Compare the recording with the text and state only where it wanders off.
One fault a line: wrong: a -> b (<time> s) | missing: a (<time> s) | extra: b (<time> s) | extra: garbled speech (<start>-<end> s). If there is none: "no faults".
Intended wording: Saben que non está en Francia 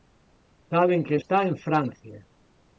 missing: non (1.2 s)